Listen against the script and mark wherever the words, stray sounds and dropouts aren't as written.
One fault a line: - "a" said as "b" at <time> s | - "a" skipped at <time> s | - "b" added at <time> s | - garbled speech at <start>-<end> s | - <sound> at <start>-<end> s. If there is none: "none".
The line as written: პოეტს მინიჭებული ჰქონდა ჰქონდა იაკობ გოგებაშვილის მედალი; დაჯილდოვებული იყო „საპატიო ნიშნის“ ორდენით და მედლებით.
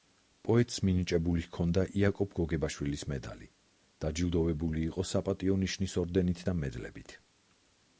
- "ჰქონდა" skipped at 1.8 s